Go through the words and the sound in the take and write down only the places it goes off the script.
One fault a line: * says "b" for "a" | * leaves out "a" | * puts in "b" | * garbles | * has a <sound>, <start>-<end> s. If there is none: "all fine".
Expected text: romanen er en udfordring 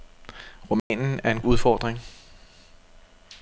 * has a dropout, 0.8-0.9 s